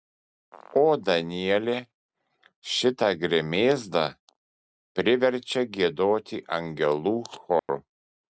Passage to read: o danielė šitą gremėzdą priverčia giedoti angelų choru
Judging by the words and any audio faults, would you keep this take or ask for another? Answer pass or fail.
fail